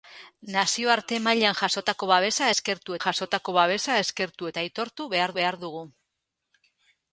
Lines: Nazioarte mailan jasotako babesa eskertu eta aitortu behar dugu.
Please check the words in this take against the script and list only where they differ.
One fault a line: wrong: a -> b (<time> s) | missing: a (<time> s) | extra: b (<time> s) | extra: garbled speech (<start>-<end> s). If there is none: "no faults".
extra: jasotako babesa eskertu (3.0 s)
extra: behar (5.4 s)